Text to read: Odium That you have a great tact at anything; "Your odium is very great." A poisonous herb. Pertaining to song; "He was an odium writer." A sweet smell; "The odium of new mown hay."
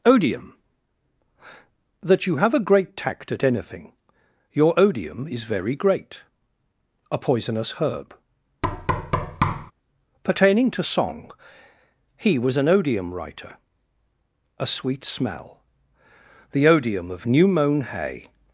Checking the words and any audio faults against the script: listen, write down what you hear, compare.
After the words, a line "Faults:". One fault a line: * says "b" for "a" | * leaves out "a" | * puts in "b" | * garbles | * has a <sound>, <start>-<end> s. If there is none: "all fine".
Odium That you have a great tact at anything; "Your odium is very great." A poisonous herb. Pertaining to song; "He was an odium writer." A sweet smell; "The odium of new mown hay."
Faults:
* has a thud, 8.6-9.7 s